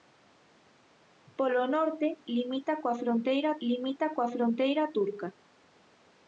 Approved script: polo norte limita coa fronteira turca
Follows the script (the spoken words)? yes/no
no